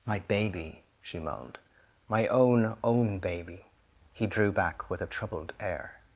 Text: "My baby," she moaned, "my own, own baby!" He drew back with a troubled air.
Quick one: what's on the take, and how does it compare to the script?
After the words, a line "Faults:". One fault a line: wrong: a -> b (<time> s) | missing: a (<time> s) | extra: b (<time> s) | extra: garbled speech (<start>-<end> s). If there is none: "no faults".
"My baby," she moaned, "my own, own baby!" He drew back with a troubled air.
Faults:
no faults